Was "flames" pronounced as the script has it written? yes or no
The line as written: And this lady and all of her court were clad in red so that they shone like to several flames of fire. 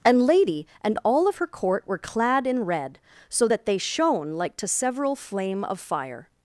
no